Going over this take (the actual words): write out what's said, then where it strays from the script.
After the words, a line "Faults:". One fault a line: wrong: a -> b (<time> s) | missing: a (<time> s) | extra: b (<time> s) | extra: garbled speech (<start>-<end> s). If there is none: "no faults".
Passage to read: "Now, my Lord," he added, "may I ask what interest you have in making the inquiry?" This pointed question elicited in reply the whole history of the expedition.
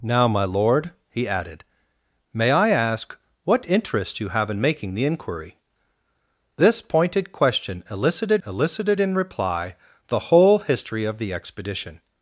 "Now, my Lord," he added, "may I ask what interest you have in making the inquiry?" This pointed question elicited elicited in reply the whole history of the expedition.
Faults:
extra: elicited (8.4 s)